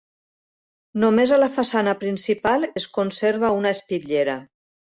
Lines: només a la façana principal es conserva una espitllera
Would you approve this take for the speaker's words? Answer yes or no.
yes